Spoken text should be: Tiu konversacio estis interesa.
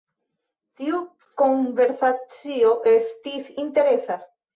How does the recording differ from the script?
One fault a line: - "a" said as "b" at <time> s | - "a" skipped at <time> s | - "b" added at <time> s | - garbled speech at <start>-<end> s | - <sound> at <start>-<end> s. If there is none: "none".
none